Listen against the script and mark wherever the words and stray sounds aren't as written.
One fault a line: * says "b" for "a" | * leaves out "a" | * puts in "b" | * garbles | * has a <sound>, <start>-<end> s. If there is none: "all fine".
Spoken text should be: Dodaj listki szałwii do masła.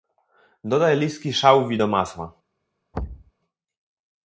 * has a thud, 2.9-3.3 s